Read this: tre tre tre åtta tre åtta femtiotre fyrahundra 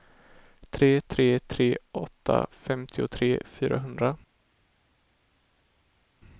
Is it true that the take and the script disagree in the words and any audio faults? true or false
true